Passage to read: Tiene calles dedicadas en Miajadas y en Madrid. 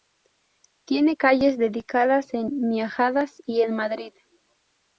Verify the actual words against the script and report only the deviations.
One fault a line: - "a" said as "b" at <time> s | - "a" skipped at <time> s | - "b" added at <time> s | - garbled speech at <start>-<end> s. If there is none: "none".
none